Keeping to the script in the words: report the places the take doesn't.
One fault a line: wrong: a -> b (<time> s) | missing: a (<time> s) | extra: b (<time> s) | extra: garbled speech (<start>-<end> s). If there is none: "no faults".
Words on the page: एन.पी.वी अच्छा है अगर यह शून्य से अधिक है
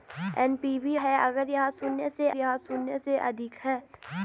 missing: अच्छा (0.9 s)
extra: यह शून्य से (2.4 s)